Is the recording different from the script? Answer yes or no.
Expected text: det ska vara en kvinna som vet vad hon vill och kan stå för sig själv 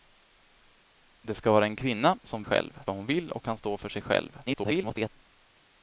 yes